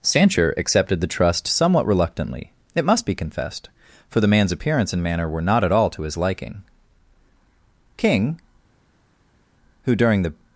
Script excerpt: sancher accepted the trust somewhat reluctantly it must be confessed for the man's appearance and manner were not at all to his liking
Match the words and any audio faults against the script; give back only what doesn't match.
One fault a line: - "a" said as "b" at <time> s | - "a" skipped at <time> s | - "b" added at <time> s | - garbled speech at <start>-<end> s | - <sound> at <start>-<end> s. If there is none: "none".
- "king who during the" added at 8.0 s